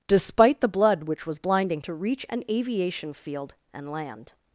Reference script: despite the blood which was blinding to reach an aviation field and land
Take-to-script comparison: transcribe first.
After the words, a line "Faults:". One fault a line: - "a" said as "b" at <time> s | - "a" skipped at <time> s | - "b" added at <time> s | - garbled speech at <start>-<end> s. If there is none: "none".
despite the blood which was blinding to reach an aviation field and land
Faults:
none